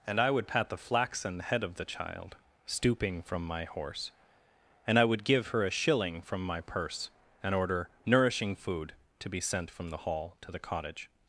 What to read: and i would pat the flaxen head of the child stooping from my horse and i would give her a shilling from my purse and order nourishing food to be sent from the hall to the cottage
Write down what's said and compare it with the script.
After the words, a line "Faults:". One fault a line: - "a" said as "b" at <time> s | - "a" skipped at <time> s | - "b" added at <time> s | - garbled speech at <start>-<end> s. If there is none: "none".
and i would pat the flaxen head of the child stooping from my horse and i would give her a shilling from my purse and order nourishing food to be sent from the hall to the cottage
Faults:
none